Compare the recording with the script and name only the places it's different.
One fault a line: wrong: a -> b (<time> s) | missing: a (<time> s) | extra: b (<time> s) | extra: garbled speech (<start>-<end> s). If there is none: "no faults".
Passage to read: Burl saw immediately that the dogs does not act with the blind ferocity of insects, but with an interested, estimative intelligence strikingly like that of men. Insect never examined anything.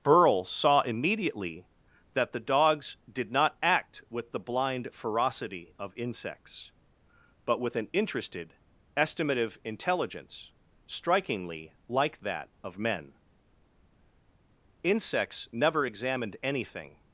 wrong: does -> did (3.1 s)
wrong: Insect -> Insects (14.8 s)